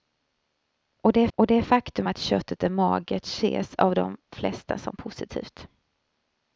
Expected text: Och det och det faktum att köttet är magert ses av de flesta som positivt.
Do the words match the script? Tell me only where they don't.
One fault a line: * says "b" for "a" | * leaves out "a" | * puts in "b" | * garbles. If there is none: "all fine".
all fine